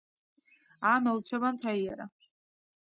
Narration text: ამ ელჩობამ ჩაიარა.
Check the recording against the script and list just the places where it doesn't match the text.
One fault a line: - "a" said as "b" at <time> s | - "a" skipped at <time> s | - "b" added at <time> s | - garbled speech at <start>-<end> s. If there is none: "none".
none